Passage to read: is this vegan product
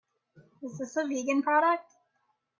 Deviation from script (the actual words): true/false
true